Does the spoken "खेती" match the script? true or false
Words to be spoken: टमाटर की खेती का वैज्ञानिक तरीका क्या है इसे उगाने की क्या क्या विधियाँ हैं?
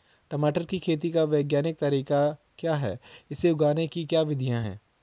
true